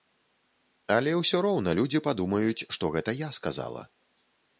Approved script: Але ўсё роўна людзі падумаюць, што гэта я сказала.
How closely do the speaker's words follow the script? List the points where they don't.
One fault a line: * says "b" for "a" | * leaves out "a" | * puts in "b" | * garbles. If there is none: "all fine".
all fine